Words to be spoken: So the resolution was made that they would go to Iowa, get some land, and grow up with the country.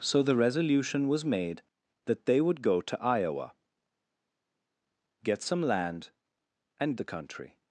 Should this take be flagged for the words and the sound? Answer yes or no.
yes